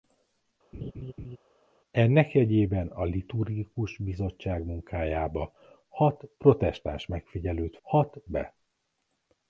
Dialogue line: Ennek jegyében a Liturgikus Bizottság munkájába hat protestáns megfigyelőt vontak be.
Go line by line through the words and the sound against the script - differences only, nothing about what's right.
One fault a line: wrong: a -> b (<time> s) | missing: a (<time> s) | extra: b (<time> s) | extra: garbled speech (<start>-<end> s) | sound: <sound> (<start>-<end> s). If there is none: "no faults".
sound: laugh (0.7-1.4 s)
wrong: vontak -> hat (7.8 s)